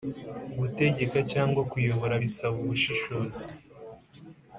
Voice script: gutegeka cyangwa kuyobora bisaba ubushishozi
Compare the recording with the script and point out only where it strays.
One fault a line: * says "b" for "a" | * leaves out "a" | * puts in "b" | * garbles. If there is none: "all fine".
all fine